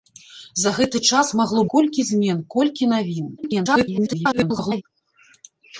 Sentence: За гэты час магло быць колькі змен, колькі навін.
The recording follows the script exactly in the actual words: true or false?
false